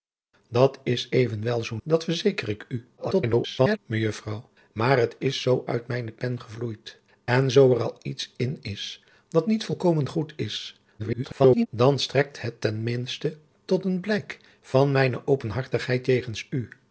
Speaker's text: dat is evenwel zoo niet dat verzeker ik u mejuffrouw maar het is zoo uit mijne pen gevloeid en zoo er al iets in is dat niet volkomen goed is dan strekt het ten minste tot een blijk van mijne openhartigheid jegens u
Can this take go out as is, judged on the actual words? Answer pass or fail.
fail